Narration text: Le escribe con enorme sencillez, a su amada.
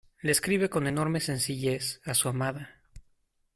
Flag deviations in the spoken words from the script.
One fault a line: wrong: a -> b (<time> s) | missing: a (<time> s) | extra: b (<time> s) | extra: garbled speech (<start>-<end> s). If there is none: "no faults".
no faults